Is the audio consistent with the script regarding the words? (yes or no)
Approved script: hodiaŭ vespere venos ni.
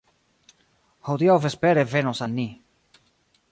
no